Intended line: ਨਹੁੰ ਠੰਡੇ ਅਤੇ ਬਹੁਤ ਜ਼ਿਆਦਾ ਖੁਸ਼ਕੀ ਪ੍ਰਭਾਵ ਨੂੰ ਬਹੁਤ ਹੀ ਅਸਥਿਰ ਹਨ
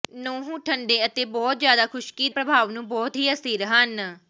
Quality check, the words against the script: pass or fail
pass